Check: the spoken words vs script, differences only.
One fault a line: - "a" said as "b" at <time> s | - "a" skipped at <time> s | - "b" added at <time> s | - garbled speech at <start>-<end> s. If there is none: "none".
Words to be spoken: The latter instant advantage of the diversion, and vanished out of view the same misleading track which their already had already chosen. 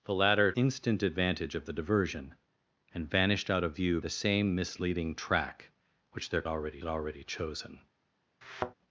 none